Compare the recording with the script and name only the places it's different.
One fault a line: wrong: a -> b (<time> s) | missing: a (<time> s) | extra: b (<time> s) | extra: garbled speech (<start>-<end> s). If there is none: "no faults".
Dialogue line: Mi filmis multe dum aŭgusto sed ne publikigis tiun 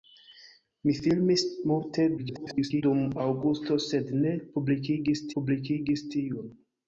extra: garbled speech (2.2-2.8 s)
extra: publikigis (5.4 s)